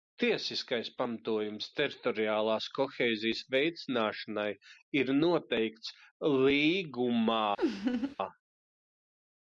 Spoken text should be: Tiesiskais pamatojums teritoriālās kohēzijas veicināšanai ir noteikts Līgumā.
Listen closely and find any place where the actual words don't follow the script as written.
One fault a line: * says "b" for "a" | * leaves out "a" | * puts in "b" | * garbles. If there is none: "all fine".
all fine